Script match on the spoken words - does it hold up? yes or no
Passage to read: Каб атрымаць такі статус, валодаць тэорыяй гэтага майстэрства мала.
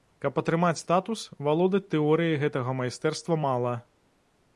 no